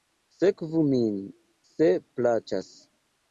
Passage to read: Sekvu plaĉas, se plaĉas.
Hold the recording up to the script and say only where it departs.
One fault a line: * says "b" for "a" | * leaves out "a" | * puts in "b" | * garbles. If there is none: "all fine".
* says "min" for "plaĉas"